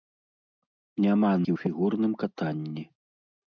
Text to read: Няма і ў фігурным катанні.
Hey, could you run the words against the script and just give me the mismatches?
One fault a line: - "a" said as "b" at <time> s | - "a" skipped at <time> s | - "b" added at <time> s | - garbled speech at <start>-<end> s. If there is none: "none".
none